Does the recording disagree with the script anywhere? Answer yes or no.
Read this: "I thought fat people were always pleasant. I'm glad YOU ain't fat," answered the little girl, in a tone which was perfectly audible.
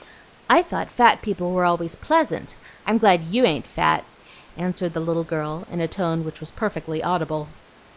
no